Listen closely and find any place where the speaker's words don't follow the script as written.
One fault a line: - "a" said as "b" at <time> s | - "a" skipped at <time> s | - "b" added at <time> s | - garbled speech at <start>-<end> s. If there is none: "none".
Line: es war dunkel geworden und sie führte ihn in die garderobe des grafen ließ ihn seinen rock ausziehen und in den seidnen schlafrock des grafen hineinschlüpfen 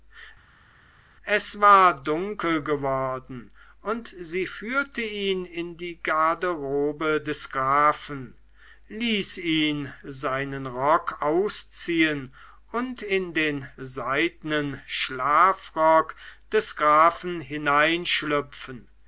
none